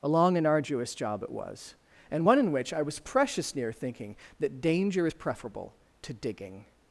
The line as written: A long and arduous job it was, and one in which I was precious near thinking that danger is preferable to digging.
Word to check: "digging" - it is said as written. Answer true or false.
true